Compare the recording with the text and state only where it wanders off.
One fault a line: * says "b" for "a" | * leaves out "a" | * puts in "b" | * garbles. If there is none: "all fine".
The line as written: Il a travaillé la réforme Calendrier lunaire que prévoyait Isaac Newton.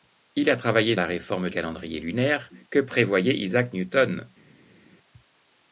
all fine